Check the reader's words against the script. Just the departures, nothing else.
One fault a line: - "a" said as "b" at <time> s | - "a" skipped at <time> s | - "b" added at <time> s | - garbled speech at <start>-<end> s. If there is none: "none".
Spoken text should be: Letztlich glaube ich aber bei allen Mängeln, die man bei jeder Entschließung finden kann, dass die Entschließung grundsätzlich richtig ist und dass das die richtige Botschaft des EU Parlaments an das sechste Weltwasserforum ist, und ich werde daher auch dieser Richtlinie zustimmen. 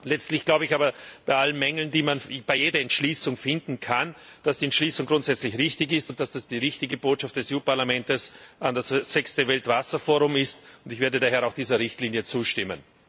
none